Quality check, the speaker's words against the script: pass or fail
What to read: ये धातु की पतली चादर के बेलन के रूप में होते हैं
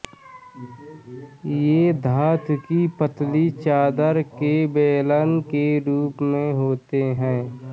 pass